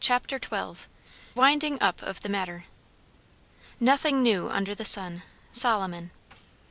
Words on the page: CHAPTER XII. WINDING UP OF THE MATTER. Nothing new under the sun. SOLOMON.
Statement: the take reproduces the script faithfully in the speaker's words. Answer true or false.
true